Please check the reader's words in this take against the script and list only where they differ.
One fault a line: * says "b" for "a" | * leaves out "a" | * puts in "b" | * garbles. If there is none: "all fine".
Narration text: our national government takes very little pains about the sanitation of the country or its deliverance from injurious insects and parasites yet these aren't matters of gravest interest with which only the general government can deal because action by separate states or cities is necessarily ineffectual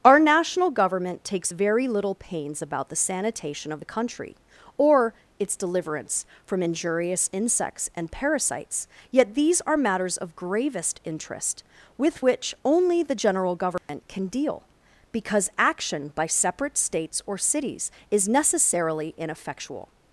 * says "are" for "aren't"